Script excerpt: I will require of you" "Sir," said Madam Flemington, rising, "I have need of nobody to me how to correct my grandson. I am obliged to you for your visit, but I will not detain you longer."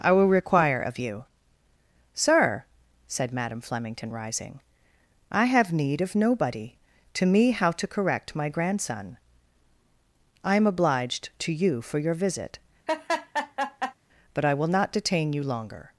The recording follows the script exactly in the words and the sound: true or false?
false